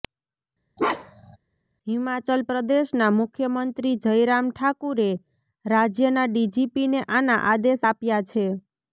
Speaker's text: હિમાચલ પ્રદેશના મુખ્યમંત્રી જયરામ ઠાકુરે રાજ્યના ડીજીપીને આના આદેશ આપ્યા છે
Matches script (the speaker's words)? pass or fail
pass